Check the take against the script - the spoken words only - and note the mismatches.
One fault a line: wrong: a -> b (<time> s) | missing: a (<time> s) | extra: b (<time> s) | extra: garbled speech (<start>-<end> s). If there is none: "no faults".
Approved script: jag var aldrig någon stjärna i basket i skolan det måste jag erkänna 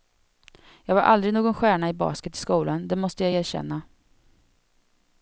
no faults